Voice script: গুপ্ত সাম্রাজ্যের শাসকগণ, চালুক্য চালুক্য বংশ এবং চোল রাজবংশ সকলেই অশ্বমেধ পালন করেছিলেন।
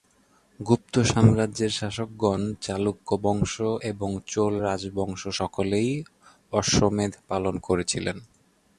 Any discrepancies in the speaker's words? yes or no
yes